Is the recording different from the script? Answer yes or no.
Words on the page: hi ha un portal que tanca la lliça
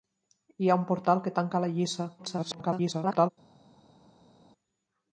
yes